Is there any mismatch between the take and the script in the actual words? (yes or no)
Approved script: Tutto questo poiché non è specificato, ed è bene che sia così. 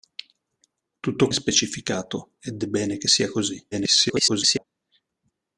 yes